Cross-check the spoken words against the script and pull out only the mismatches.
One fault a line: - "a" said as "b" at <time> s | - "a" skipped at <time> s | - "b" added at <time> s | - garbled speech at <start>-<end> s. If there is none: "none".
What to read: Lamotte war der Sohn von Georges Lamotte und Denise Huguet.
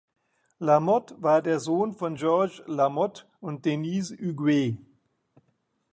none